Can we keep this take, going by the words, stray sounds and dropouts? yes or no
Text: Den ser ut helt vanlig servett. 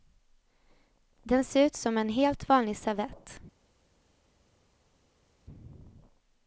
no